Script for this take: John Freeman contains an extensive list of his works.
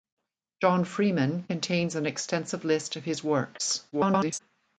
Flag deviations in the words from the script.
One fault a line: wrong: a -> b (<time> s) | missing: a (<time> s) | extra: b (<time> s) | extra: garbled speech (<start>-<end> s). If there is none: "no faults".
extra: garbled speech (3.9-4.4 s)